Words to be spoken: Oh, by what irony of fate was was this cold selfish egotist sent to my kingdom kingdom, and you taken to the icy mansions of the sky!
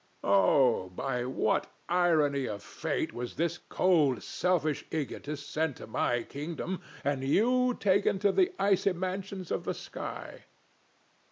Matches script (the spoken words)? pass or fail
fail